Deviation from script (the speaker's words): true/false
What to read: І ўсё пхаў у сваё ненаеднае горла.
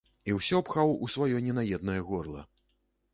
false